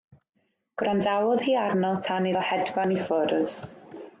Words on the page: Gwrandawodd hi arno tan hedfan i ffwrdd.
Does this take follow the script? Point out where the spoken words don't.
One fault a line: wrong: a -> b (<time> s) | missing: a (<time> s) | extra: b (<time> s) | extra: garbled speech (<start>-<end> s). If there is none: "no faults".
extra: iddo (2.3 s)